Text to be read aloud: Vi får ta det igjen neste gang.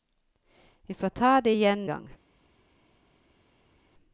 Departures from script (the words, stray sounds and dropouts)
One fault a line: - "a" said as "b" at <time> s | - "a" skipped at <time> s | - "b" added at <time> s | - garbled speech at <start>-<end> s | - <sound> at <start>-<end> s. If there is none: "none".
- "neste" skipped at 1.9 s